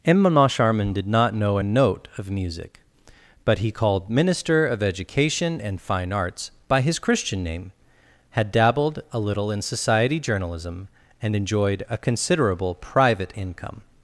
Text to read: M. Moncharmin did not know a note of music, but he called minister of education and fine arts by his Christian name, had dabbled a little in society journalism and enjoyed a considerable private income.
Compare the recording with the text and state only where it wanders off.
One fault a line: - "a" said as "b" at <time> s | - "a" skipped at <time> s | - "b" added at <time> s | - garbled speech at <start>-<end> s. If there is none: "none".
none